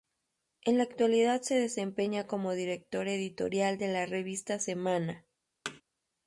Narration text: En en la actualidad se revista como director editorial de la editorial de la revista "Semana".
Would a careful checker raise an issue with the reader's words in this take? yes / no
yes